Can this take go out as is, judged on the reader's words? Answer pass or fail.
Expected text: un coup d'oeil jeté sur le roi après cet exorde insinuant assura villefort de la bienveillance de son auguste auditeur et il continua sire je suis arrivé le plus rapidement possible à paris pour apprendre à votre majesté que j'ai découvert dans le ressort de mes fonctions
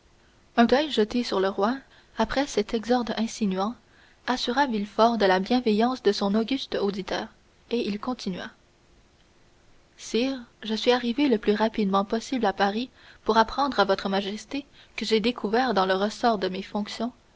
fail